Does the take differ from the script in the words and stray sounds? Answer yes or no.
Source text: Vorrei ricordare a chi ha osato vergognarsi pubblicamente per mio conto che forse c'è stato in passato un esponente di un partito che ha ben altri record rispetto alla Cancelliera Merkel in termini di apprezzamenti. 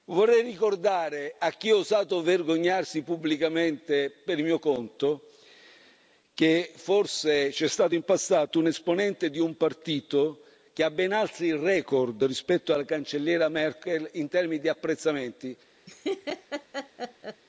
yes